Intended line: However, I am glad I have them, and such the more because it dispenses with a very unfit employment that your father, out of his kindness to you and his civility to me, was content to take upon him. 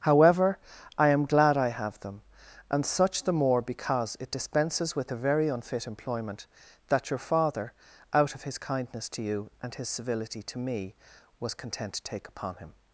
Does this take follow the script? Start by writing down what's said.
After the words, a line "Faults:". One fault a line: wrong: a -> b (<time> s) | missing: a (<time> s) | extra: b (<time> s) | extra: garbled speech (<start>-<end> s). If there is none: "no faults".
However, I am glad I have them, and such the more because it dispenses with a very unfit employment that your father, out of his kindness to you and his civility to me, was content to take upon him.
Faults:
no faults